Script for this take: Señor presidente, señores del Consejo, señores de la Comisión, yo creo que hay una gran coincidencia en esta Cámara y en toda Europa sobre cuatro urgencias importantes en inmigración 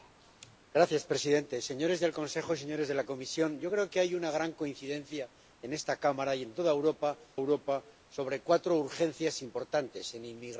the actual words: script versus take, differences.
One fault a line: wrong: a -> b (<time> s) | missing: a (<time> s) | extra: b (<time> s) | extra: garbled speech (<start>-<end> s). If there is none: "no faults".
extra: Europa (7.3 s)